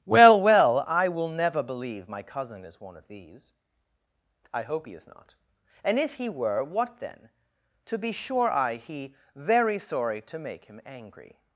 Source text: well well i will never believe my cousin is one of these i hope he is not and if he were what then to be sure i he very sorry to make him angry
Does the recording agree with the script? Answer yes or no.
yes